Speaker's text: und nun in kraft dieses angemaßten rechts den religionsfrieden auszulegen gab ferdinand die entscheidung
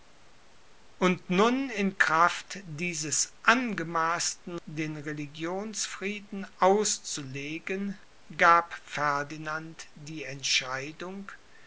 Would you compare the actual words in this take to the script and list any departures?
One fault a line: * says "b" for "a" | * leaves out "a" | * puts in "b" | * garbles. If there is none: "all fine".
* leaves out "rechts"